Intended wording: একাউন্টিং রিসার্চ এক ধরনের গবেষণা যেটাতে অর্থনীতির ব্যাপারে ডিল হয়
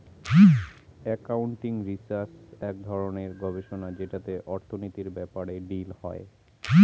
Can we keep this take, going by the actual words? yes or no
yes